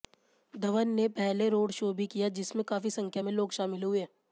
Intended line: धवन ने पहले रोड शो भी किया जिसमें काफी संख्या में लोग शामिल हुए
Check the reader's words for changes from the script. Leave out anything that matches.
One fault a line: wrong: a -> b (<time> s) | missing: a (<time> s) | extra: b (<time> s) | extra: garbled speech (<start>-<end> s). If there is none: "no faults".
no faults